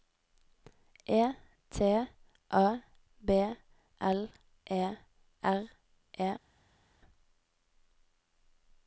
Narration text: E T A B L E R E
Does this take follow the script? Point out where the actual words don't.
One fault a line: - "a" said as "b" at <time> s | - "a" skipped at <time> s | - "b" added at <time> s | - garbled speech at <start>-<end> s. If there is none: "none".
none